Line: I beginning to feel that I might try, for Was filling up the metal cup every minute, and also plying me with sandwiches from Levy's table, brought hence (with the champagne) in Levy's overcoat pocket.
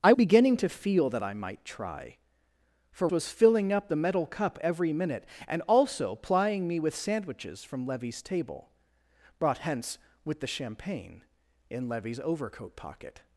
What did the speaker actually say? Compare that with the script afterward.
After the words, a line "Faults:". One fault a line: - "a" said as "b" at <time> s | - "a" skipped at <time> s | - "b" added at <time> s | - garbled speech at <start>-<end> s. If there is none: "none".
I beginning to feel that I might try, for Was filling up the metal cup every minute, and also plying me with sandwiches from Levy's table, brought hence (with the champagne) in Levy's overcoat pocket.
Faults:
none